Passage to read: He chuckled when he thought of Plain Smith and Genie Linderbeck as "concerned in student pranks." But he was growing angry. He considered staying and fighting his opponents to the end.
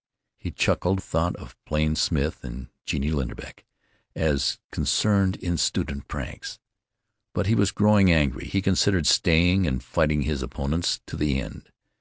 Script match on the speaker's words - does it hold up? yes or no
no